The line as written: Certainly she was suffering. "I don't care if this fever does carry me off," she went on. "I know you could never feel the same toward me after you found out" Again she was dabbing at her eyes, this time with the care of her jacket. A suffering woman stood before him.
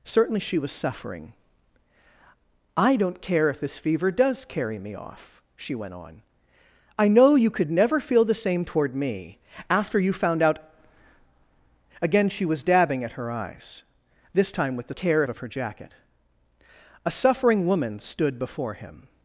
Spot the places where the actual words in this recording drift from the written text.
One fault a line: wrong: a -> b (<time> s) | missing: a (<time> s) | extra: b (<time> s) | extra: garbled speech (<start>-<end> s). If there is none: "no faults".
no faults